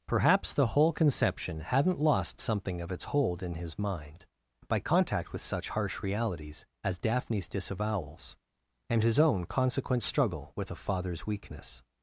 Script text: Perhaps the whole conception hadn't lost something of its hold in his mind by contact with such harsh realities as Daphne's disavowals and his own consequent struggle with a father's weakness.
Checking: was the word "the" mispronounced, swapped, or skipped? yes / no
no